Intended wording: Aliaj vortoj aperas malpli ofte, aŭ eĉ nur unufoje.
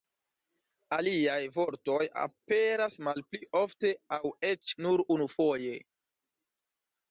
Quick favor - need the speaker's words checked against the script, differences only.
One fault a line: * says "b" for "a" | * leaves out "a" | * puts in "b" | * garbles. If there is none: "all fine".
all fine